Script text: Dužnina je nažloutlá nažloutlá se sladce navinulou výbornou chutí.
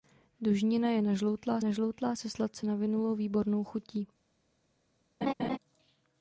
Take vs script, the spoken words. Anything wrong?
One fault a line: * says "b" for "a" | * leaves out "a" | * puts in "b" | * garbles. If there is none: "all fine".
all fine